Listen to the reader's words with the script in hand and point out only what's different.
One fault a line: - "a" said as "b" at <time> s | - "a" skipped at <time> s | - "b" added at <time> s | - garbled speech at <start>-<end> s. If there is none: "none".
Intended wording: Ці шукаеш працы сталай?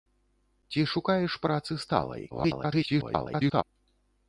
- garbled speech at 2.3-3.6 s